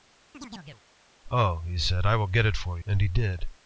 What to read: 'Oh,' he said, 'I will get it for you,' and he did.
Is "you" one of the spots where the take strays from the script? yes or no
yes